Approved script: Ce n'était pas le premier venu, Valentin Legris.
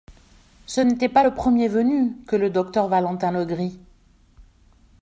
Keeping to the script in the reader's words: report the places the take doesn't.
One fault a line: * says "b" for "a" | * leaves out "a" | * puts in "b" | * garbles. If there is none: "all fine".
* puts in "que le docteur"